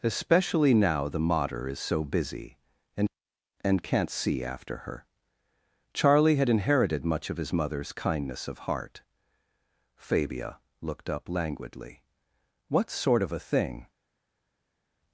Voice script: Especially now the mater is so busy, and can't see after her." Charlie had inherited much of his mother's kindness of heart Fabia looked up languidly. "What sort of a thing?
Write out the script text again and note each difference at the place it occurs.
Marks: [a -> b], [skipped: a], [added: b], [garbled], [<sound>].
Especially now the mater is so busy, and [added: and] can't see after her." Charlie had inherited much of his mother's kindness of heart Fabia looked up languidly. "What sort of a thing?